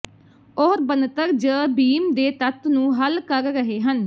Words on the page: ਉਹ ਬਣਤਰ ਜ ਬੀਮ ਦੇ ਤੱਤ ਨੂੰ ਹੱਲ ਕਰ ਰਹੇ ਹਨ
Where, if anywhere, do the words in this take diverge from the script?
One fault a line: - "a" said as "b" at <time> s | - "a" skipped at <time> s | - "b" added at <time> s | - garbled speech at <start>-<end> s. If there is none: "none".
none